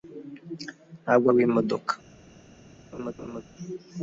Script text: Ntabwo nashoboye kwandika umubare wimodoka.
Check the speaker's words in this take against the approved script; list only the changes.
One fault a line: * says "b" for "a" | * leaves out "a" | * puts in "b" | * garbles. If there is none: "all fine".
* leaves out "nashoboye kwandika umubare"